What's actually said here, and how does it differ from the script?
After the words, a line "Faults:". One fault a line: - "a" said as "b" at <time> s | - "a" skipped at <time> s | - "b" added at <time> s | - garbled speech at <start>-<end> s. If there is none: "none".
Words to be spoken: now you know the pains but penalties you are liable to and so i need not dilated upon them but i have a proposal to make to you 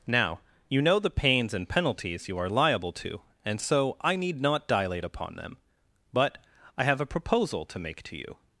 now you know the pains and penalties you are liable to and so i need not dilate upon them but i have a proposal to make to you
Faults:
- "but" said as "and" at 1.5 s
- "dilated" said as "dilate" at 4.7 s